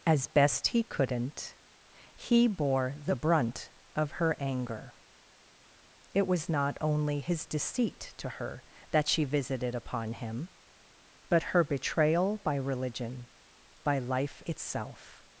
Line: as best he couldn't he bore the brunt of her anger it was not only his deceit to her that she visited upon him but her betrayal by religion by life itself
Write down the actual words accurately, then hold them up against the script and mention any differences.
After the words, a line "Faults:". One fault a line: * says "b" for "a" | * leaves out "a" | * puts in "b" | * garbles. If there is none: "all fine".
as best he couldn't he bore the brunt of her anger it was not only his deceit to her that she visited upon him but her betrayal by religion by life itself
Faults:
all fine